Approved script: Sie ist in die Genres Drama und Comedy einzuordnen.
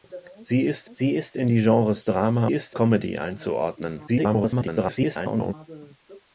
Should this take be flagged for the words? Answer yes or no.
yes